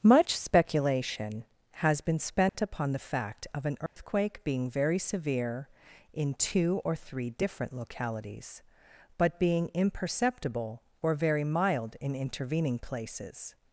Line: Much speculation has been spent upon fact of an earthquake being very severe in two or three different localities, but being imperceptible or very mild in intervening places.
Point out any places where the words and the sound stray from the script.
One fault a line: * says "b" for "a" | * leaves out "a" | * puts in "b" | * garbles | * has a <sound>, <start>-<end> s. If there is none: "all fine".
* has a dropout, 2.5-2.5 s
* puts in "the"
* has a dropout, 3.9-4.0 s